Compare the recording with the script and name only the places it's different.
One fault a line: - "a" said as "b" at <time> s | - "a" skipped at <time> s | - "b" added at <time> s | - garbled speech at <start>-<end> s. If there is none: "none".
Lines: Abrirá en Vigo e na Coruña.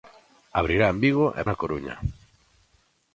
none